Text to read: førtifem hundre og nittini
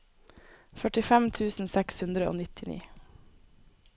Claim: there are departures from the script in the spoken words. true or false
true